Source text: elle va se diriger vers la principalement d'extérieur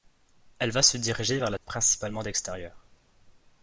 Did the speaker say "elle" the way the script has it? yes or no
yes